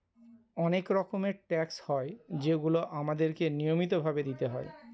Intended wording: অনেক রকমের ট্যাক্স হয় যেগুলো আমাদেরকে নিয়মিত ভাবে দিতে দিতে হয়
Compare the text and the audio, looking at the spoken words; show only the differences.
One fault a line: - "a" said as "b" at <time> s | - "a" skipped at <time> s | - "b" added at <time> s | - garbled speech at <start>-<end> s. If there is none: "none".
- "দিতে" skipped at 4.4 s